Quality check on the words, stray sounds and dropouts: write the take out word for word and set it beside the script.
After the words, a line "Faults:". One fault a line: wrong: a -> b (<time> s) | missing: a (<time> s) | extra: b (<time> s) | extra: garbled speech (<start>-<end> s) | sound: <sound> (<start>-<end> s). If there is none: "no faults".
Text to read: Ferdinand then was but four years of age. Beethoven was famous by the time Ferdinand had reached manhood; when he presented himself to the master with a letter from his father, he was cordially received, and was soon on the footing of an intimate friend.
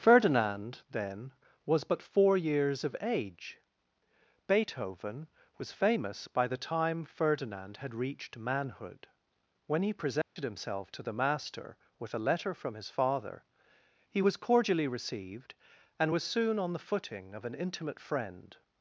Ferdinand then was but four years of age. Beethoven was famous by the time Ferdinand had reached manhood; when he presented himself to the master with a letter from his father, he was cordially received, and was soon on the footing of an intimate friend.
Faults:
sound: dropout (10.2-10.4 s)